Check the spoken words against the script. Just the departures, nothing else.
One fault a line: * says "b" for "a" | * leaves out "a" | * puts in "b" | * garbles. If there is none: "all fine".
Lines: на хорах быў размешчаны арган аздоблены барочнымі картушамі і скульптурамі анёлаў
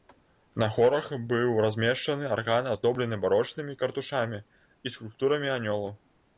all fine